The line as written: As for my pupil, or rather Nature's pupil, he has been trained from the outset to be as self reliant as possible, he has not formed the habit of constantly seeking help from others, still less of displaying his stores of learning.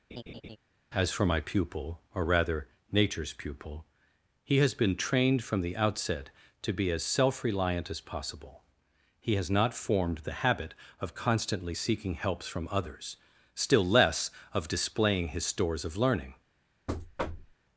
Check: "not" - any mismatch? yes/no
no